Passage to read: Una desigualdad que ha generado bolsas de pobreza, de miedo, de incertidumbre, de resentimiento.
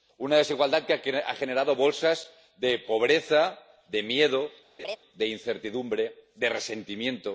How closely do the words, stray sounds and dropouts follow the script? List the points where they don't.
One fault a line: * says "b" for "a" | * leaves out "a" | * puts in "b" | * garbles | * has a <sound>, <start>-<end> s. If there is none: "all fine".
* has a laugh, 4.8-5.0 s